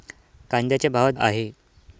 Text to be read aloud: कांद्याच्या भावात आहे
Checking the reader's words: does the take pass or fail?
pass